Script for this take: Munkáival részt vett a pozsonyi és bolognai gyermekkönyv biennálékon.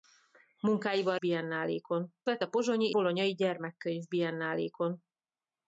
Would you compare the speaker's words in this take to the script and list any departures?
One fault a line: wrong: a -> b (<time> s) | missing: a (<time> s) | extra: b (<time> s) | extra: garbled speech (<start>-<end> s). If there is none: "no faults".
wrong: részt -> biennálékon (1.2 s)
missing: és (2.9 s)